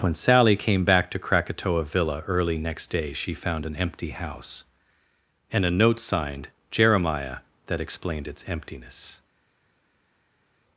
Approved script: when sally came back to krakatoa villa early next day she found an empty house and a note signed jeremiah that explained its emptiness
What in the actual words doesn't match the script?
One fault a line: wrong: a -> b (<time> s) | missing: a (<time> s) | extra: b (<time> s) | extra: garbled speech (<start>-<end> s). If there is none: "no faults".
no faults